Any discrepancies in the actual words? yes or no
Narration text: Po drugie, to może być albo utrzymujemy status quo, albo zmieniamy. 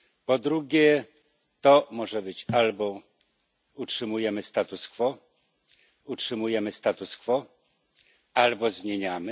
yes